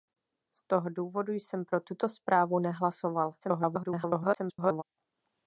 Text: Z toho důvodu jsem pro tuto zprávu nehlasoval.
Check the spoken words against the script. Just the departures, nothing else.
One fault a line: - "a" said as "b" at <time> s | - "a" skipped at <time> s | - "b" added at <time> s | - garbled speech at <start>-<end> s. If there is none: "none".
- garbled speech at 3.4-4.8 s